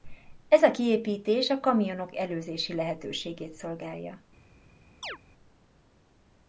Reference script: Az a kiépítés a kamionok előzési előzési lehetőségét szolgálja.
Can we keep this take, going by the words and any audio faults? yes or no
no